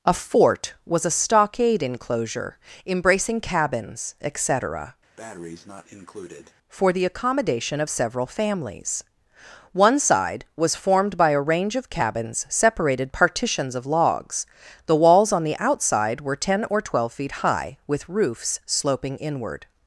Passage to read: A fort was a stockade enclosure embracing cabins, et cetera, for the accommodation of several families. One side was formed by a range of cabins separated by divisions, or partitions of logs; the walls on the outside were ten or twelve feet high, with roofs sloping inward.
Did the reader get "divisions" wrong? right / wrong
wrong